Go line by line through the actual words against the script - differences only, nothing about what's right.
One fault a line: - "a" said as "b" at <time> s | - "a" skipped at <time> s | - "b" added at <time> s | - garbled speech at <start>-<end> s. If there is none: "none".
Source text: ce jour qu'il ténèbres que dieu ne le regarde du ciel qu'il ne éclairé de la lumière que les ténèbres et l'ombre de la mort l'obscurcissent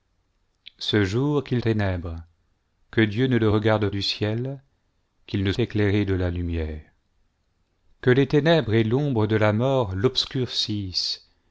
none